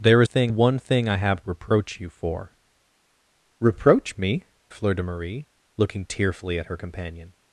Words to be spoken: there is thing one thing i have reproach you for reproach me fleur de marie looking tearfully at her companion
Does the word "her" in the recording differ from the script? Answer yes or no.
no